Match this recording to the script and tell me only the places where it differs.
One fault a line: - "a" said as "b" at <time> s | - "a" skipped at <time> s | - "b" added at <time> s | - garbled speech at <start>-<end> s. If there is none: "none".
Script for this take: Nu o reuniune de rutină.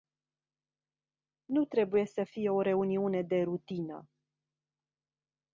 - "trebuie să fie" added at 1.6 s